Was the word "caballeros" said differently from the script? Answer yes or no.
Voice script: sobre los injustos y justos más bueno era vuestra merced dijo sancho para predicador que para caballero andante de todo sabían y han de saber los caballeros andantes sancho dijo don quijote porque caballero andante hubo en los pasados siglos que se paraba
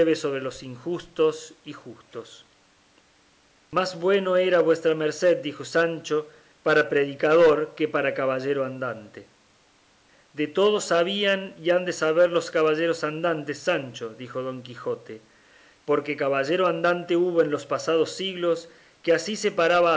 no